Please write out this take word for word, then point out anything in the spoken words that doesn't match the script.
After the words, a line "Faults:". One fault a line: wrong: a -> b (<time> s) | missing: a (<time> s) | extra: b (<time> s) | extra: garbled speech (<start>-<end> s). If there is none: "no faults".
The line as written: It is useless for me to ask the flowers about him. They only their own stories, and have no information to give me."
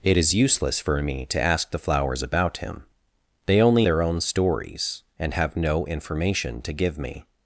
It is useless for me to ask the flowers about him. They only their own stories, and have no information to give me."
Faults:
no faults